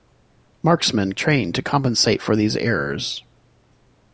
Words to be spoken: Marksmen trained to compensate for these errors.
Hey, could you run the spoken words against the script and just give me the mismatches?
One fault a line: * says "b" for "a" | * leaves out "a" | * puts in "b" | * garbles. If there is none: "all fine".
all fine